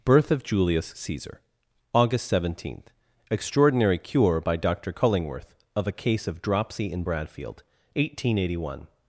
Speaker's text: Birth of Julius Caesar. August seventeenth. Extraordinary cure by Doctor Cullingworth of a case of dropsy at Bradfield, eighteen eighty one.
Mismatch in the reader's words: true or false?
true